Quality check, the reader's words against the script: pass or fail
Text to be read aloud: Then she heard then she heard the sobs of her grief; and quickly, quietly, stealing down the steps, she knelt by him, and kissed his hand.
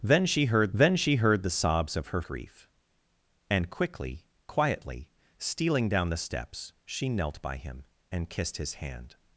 pass